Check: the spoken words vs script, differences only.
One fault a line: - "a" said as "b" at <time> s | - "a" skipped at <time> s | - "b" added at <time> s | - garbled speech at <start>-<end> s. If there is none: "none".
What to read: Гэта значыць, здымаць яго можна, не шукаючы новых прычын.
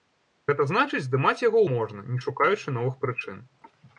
none